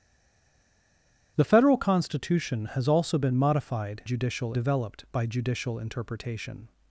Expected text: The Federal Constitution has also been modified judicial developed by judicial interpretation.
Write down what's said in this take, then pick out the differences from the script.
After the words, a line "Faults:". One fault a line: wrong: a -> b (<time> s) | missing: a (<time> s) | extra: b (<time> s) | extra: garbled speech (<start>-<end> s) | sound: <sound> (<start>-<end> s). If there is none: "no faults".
The Federal Constitution has also been modified judicial developed by judicial interpretation.
Faults:
no faults